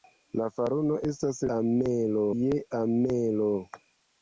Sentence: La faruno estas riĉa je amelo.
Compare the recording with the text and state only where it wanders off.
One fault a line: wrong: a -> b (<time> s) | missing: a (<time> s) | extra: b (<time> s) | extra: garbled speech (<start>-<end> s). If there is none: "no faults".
wrong: riĉa -> amelo (1.6 s)